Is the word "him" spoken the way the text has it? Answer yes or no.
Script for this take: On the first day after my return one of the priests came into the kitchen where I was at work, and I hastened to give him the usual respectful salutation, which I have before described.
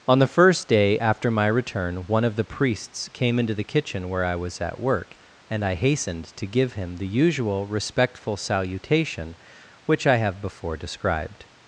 yes